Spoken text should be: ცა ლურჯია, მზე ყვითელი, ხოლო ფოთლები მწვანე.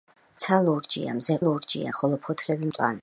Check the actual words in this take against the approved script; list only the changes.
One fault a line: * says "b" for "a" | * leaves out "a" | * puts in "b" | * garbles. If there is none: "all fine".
* says "ლურჯია" for "ყვითელი"